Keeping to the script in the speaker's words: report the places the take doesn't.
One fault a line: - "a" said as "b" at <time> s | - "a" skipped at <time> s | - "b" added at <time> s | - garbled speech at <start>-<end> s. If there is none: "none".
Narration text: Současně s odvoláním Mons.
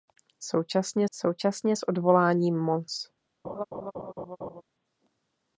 - "současně" added at 1.1 s